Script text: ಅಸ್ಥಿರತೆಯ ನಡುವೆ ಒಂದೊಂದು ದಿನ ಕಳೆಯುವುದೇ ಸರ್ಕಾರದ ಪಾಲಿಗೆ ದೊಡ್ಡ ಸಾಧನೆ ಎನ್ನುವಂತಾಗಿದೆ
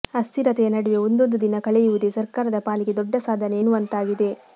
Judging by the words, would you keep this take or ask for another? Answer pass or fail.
pass